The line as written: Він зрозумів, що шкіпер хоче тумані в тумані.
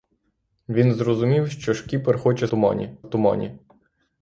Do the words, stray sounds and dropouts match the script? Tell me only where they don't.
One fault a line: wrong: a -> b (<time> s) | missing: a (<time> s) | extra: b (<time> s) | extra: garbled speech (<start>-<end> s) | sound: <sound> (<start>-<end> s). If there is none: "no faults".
no faults